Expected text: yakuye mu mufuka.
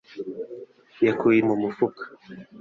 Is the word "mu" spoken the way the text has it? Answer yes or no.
yes